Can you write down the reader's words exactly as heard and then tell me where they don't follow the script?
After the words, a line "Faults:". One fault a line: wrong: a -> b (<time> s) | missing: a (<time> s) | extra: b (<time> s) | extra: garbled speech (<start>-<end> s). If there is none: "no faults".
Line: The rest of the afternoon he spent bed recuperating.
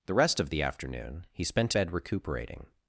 The rest of the afternoon he spent bed recuperating.
Faults:
no faults